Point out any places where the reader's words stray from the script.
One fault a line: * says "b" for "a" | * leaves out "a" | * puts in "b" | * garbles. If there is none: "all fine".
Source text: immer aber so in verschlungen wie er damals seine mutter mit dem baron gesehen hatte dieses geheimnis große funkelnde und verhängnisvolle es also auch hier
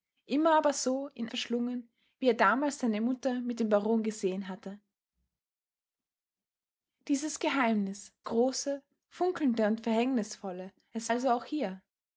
all fine